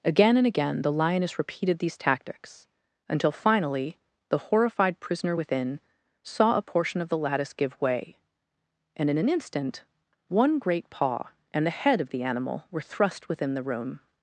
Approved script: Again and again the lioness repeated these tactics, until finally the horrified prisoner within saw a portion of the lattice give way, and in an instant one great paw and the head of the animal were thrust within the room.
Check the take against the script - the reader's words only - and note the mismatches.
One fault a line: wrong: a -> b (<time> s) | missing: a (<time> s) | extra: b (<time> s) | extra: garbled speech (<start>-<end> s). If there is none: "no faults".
no faults